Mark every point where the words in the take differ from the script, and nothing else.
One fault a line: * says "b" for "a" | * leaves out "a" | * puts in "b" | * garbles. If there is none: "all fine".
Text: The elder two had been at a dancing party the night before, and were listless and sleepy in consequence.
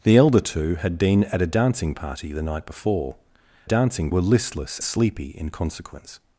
* says "dancing" for "and"
* leaves out "and"